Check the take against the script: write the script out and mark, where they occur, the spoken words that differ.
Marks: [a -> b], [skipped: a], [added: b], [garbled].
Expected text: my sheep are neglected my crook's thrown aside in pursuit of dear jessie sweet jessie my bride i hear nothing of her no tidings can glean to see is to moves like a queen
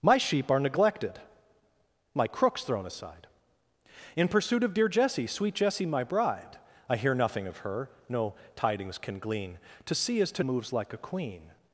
my sheep are neglected my crook's thrown aside in pursuit of dear jessie sweet jessie my bride i hear nothing of her no tidings can glean to see is to moves like a queen